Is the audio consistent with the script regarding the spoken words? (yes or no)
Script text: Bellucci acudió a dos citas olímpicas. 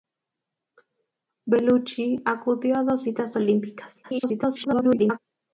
no